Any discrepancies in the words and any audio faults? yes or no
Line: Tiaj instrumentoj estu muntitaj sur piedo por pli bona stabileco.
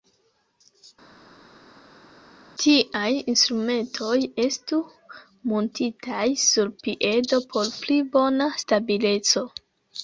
no